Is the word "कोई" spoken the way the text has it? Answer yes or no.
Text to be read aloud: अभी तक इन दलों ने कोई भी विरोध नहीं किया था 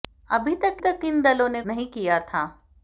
no